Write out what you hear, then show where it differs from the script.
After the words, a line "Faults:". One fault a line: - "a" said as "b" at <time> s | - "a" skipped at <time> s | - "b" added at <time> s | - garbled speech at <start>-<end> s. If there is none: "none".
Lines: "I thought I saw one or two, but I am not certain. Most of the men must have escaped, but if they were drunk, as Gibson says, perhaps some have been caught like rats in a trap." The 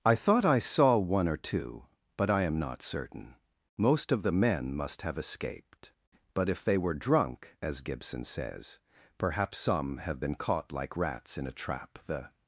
"I thought I saw one or two, but I am not certain. Most of the men must have escaped, but if they were drunk, as Gibson says, perhaps some have been caught like rats in a trap." The
Faults:
none